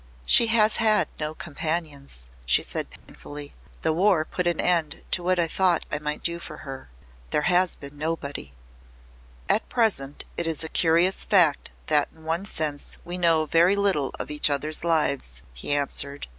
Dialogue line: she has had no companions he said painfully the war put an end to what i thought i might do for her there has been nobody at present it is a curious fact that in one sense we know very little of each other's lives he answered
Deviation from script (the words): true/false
true